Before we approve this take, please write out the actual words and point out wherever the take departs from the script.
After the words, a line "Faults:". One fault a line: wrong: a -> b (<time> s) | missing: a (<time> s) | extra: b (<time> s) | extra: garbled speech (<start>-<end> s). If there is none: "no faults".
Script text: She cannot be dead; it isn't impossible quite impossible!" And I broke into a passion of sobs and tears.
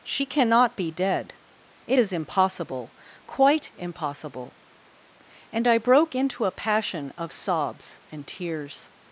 She cannot be dead; it is impossible quite impossible!" And I broke into a passion of sobs and tears.
Faults:
wrong: isn't -> is (2.0 s)